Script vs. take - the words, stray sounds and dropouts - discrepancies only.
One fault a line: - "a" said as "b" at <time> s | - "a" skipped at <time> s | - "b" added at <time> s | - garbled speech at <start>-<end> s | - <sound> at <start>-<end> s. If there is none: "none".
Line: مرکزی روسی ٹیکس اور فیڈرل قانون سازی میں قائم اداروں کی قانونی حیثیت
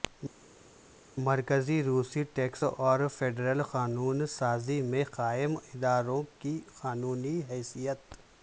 none